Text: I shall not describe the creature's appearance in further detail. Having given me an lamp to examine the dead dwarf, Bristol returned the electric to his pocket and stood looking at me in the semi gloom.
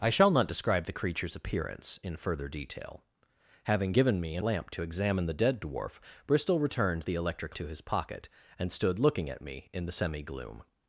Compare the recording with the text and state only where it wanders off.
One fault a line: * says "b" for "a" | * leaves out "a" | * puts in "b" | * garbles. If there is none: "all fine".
all fine